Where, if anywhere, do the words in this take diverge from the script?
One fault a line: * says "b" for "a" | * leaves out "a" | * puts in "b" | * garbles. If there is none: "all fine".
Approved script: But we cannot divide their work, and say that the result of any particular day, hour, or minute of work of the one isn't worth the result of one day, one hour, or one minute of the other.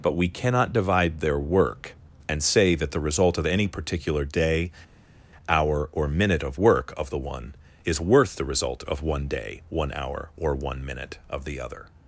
* says "is" for "isn't"